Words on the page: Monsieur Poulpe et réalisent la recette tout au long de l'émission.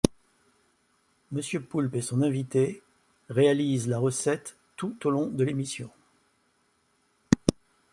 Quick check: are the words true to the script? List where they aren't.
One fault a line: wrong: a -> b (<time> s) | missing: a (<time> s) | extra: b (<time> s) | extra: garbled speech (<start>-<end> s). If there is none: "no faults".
extra: son invité (2.0 s)